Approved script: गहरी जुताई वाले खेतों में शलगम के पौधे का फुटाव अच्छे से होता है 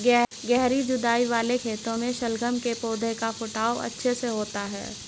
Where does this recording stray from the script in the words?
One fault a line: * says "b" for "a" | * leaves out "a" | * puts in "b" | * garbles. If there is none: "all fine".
all fine